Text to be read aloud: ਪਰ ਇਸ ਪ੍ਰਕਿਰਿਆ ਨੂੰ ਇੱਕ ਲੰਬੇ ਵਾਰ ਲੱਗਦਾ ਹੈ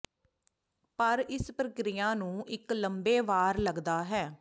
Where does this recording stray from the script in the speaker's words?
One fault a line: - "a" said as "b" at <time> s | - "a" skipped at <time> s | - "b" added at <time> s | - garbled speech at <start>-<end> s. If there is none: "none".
none